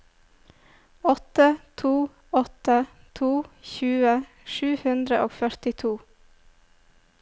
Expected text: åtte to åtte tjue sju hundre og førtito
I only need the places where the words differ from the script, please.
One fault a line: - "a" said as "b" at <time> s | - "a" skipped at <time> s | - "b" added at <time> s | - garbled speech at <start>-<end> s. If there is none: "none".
- "to" added at 3.1 s